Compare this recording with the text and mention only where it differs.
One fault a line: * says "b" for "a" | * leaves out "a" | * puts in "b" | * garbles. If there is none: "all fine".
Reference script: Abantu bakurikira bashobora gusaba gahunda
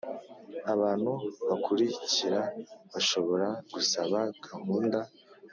all fine